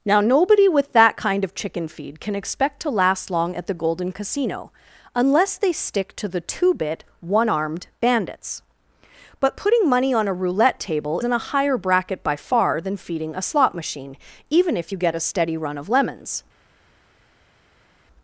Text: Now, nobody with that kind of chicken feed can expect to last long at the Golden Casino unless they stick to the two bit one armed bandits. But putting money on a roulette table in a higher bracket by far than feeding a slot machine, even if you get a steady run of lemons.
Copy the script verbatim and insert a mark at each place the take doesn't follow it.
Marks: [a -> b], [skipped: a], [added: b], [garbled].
Now, nobody with that kind of chicken feed can expect to last long at the Golden Casino unless they stick to the two bit one armed bandits. But putting money on a roulette table in a higher bracket by far than feeding a slot machine, even if you get a steady run of lemons.